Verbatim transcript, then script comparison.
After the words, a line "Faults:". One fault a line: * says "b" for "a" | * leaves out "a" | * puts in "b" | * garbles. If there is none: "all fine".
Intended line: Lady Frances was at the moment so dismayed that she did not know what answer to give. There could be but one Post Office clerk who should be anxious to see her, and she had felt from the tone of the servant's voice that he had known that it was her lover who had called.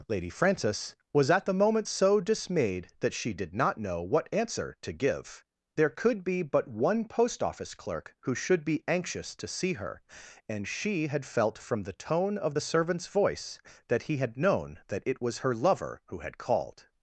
Lady Frances was at the moment so dismayed that she did not know what answer to give. There could be but one Post Office clerk who should be anxious to see her, and she had felt from the tone of the servant's voice that he had known that it was her lover who had called.
Faults:
all fine